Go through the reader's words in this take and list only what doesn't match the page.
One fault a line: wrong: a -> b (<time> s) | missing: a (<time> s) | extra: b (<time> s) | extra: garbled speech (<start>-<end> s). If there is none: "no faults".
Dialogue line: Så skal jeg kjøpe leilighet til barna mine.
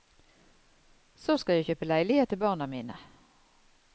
no faults